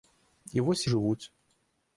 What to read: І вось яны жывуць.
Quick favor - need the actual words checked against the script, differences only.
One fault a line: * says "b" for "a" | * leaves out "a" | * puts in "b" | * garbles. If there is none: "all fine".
* leaves out "яны"